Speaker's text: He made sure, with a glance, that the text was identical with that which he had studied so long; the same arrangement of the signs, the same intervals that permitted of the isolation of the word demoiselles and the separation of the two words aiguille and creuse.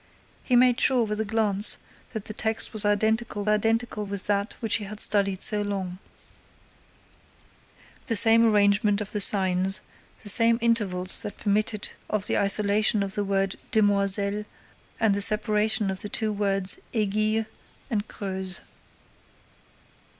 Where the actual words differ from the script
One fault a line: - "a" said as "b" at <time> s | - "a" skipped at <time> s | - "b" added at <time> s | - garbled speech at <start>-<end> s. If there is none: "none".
- "identical" added at 3.5 s